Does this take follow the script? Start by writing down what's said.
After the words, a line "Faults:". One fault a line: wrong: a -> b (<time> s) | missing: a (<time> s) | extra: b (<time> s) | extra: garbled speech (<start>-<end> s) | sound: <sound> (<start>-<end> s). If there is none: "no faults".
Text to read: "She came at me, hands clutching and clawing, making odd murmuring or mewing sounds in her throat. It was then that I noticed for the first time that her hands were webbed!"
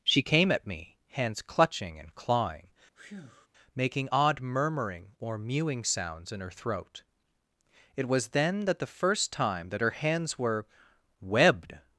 "She came at me, hands clutching and clawing, making odd murmuring or mewing sounds in her throat. It was then that the first time that her hands were webbed!"
Faults:
sound: breath (2.9-3.5 s)
missing: I noticed for (8.8 s)